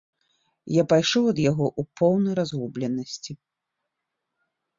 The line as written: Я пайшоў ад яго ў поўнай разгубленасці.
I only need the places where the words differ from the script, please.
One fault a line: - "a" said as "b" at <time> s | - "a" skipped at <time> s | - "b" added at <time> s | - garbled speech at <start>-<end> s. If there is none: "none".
none